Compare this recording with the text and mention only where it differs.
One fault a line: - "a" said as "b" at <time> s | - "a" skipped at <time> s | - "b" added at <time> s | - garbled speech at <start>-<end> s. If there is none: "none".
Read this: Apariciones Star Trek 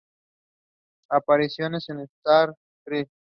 - "en" added at 1.9 s